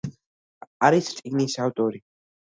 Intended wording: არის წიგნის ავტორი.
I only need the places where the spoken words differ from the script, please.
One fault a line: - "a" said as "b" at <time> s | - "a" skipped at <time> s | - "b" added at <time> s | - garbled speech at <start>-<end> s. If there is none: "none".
none